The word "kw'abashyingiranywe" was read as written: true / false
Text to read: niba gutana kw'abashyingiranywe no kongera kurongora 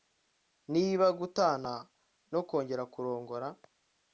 false